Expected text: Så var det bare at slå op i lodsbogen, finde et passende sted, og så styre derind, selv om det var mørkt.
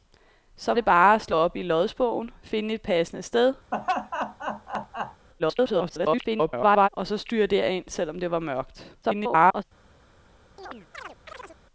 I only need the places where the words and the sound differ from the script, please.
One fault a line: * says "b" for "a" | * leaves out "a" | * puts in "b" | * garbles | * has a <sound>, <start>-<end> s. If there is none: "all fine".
* leaves out "var"
* has a laugh, 3.7-5.3 s
* garbles
* garbles
* has a chirp, 10.6-11.6 s